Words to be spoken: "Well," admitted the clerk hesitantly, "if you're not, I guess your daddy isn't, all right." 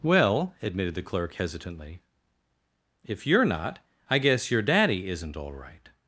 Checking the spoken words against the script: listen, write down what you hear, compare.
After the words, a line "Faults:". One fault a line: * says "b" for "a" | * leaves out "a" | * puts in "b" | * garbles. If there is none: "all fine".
"Well," admitted the clerk hesitantly, "if you're not, I guess your daddy isn't, all right."
Faults:
all fine